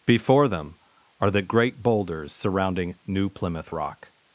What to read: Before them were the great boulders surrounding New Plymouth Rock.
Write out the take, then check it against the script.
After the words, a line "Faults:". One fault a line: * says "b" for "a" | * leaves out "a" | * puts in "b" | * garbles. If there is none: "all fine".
Before them are the great boulders surrounding New Plymouth Rock.
Faults:
* says "are" for "were"